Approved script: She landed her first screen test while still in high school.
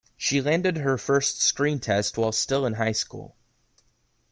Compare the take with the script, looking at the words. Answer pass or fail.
pass